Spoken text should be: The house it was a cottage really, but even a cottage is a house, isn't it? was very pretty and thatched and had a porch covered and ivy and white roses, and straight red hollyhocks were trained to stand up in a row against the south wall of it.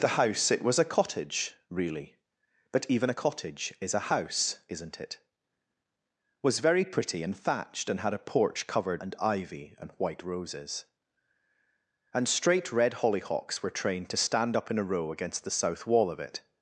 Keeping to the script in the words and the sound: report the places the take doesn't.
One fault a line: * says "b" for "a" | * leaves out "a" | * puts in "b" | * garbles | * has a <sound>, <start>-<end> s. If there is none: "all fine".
all fine